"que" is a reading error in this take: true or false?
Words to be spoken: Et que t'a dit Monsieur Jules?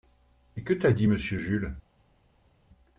false